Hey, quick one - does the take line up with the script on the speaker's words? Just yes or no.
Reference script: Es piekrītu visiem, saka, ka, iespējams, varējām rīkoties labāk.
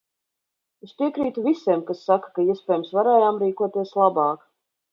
no